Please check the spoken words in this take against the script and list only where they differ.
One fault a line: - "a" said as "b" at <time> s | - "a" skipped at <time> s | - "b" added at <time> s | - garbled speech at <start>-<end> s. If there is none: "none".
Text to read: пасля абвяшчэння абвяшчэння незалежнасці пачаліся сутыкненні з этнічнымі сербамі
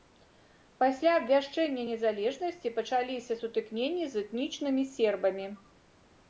- "абвяшчэння" skipped at 1.8 s